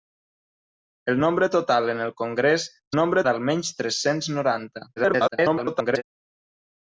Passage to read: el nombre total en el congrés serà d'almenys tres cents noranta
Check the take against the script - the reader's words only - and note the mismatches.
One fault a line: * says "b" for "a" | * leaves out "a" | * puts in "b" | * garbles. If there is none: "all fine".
* says "nombre" for "serà"
* garbles